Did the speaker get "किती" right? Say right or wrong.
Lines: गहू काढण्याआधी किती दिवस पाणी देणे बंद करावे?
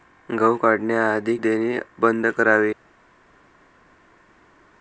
wrong